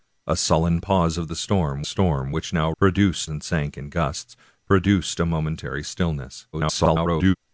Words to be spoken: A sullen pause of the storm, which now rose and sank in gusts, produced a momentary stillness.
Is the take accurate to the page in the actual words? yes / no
no